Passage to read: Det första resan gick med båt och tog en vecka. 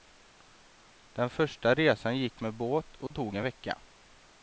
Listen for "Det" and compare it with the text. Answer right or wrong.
wrong